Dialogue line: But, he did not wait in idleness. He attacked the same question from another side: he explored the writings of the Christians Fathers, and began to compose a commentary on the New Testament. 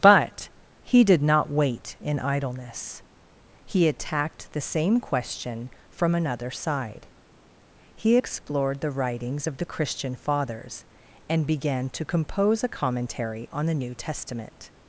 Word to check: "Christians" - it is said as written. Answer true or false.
false